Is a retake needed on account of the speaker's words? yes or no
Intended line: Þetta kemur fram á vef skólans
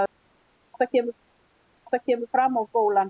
yes